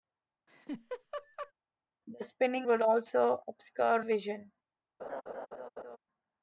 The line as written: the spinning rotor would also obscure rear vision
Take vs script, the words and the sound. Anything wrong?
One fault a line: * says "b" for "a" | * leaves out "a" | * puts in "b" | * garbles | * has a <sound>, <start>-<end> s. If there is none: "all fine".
* has a laugh, 0.5-1.5 s
* leaves out "rotor"
* leaves out "rear"
* has a laugh, 5.0-6.0 s